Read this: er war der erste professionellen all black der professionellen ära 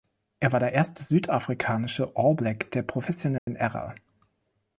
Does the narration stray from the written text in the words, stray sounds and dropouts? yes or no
yes